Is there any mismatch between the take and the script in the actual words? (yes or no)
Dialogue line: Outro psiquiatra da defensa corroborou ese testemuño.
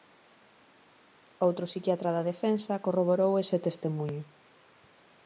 no